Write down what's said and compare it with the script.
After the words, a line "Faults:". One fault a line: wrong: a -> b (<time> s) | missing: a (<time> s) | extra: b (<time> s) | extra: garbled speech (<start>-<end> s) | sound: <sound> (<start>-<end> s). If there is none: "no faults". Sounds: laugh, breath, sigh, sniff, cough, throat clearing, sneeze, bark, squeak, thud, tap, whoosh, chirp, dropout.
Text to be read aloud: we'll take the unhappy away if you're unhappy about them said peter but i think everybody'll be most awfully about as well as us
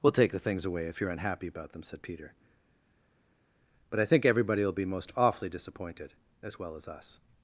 we'll take the things away if you're unhappy about them said peter but i think everybody'll be most awfully disappointed as well as us
Faults:
wrong: unhappy -> things (0.4 s)
wrong: about -> disappointed (5.5 s)